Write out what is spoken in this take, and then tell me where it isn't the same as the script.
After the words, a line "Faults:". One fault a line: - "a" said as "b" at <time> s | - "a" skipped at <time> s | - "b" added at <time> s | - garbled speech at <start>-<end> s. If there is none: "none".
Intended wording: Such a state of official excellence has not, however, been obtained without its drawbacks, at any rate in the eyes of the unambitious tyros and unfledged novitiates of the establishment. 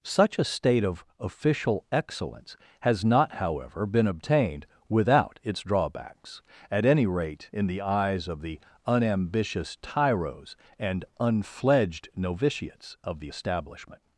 Such a state of official excellence has not, however, been obtained without its drawbacks, at any rate in the eyes of the unambitious tyros and unfledged novitiates of the establishment.
Faults:
none